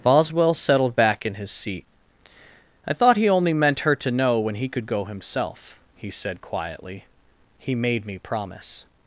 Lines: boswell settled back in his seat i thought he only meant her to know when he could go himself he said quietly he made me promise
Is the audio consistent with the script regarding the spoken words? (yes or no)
yes